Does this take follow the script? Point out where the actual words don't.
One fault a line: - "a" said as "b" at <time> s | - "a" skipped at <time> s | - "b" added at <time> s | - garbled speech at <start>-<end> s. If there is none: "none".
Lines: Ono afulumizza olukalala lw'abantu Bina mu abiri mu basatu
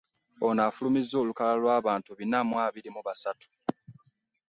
none